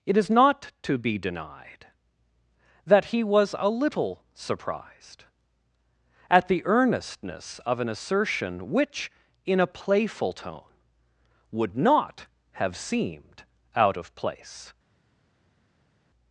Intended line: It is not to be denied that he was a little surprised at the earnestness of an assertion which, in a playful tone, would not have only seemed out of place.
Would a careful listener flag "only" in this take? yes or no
yes